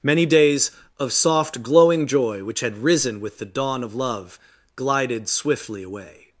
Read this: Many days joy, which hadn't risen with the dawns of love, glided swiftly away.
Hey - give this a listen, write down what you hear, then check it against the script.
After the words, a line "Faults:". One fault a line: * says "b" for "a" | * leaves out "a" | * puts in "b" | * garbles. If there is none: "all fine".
Many days of soft, glowing joy, which had risen with the dawn of love, glided swiftly away.
Faults:
* puts in "of soft glowing"
* says "had" for "hadn't"
* says "dawn" for "dawns"